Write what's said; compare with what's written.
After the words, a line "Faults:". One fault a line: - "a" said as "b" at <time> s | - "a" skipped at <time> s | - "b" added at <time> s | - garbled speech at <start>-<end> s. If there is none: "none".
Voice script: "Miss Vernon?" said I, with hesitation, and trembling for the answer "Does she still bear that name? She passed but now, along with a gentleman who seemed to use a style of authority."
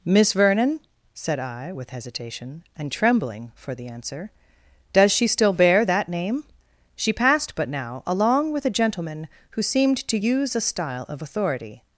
"Miss Vernon?" said I, with hesitation, and trembling for the answer "Does she still bear that name? She passed but now, along with a gentleman who seemed to use a style of authority."
Faults:
none